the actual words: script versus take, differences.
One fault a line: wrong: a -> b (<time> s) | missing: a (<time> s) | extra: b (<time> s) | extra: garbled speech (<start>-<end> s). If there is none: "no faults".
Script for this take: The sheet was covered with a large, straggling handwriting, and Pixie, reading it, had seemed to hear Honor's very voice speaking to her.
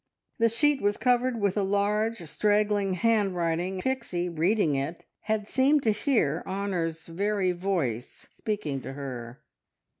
missing: and (3.8 s)